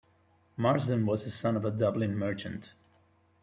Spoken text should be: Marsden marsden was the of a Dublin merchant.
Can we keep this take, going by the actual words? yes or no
no